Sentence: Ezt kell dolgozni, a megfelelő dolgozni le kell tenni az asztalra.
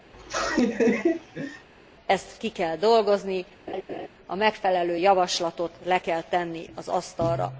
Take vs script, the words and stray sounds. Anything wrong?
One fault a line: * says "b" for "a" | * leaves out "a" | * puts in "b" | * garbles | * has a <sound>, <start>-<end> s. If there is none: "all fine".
* has a laugh, 0.1-1.7 s
* puts in "ki"
* has a laugh, 3.7-4.1 s
* says "javaslatot" for "dolgozni"